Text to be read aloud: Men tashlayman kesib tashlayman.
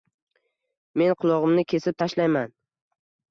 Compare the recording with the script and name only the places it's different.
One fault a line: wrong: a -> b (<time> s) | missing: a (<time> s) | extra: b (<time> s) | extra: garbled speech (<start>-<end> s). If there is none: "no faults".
wrong: tashlayman -> qulog‘imni (1.2 s)